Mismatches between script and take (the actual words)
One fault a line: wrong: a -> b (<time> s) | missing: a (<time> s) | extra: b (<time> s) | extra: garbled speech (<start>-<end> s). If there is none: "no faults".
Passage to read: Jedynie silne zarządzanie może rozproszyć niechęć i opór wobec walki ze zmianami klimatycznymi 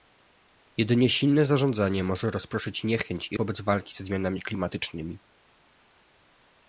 missing: opór (3.4 s)